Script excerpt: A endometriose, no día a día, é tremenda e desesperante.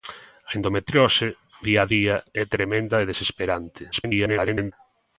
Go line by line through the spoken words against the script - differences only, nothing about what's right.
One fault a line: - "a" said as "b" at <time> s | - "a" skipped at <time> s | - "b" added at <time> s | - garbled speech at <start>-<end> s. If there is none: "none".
- "no" skipped at 1.3 s
- garbled speech at 3.9-4.7 s